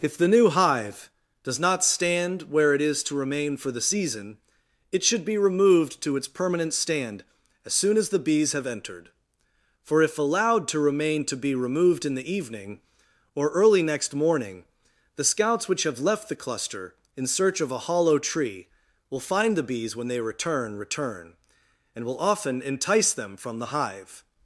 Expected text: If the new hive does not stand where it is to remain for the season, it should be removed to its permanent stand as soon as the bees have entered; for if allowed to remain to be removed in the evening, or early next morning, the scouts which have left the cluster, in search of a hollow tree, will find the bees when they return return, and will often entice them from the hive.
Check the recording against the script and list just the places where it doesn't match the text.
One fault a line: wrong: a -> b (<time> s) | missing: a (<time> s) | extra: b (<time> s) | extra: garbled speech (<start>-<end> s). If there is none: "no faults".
no faults